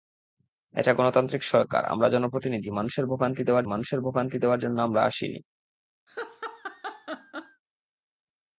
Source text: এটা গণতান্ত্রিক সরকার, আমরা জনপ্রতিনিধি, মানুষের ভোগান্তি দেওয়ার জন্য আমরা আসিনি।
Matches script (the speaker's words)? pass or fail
fail